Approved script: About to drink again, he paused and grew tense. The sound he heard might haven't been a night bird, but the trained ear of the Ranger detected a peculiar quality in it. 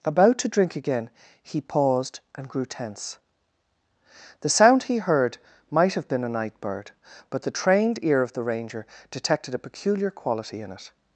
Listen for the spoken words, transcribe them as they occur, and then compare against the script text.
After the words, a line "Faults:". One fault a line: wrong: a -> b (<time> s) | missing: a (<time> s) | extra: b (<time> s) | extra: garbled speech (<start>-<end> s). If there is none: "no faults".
About to drink again, he paused and grew tense. The sound he heard might have been a night bird, but the trained ear of the Ranger detected a peculiar quality in it.
Faults:
wrong: haven't -> have (5.9 s)